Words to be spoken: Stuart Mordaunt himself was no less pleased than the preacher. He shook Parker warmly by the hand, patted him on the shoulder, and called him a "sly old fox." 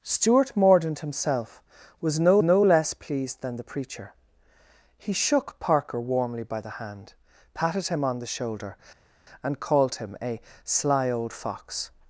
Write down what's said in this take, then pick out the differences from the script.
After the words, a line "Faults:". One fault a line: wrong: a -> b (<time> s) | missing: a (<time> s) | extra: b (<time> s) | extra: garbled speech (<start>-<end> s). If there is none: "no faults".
Stuart Mordaunt himself was no no less pleased than the preacher. He shook Parker warmly by the hand, patted him on the shoulder, and called him a "sly old fox."
Faults:
extra: no (2.4 s)